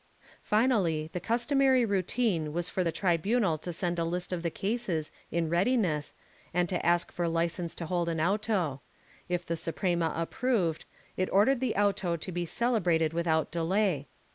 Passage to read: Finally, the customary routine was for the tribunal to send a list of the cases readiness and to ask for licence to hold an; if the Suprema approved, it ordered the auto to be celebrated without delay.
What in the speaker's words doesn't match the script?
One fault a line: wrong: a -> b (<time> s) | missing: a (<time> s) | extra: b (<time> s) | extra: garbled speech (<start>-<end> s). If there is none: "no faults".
extra: in (5.3 s)
extra: auto (8.2 s)